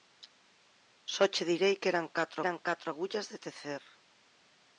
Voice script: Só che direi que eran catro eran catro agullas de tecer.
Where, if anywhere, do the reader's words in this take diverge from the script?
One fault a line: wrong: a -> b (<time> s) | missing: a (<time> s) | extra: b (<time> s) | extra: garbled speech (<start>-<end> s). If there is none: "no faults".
no faults